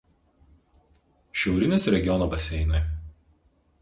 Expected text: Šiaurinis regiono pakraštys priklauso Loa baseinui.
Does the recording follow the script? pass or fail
fail